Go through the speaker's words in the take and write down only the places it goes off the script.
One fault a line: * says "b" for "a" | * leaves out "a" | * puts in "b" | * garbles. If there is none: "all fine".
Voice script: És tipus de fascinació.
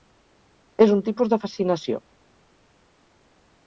* puts in "un"